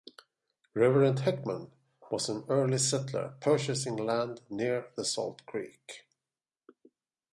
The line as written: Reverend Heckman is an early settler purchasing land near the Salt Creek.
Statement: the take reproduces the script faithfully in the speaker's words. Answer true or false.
false